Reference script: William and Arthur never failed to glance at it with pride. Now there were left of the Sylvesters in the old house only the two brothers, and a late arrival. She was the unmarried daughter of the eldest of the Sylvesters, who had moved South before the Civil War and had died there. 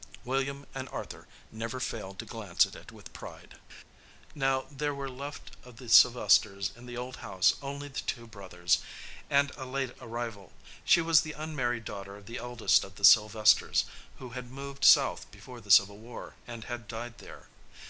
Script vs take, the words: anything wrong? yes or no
no